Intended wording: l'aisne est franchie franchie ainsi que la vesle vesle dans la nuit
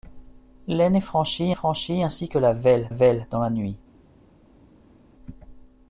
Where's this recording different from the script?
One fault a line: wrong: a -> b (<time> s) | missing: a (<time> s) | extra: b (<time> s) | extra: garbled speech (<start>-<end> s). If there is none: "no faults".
no faults